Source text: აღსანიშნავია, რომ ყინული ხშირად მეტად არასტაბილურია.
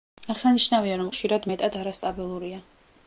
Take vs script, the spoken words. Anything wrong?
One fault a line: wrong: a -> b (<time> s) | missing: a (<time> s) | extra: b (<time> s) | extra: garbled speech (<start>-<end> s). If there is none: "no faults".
missing: ყინული (1.1 s)